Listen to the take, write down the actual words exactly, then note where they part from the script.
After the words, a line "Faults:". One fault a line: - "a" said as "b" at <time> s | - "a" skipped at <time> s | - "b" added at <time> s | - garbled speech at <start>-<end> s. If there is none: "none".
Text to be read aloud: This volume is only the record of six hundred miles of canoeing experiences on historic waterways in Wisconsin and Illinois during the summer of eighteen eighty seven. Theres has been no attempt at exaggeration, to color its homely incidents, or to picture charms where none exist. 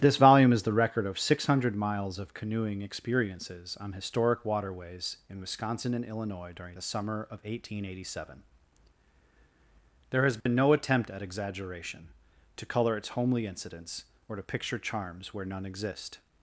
This volume is the record of six hundred miles of canoeing experiences on historic waterways in Wisconsin and Illinois during the summer of eighteen eighty seven. There has been no attempt at exaggeration, to color its homely incidents, or to picture charms where none exist.
Faults:
- "only" skipped at 0.6 s
- "Theres" said as "There" at 10.1 s